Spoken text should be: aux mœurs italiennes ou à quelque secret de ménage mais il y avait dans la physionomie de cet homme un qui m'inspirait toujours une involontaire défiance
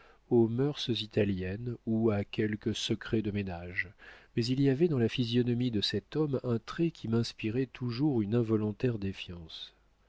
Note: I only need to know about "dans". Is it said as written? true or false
true